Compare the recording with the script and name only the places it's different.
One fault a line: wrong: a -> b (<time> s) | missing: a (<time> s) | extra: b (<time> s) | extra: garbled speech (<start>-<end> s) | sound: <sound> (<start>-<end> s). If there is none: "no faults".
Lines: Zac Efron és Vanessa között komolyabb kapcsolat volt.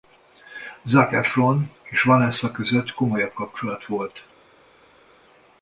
no faults